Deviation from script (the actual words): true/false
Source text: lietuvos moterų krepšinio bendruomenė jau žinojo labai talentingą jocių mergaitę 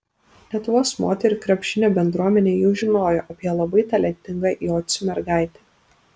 true